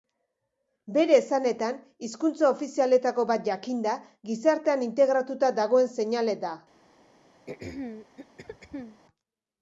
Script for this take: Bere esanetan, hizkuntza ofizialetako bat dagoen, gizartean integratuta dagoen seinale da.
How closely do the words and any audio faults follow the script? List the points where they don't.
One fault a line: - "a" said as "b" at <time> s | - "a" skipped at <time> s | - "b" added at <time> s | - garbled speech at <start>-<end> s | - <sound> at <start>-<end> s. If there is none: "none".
- "dagoen" said as "jakinda" at 3.5 s
- throat clearing at 7.5-9.0 s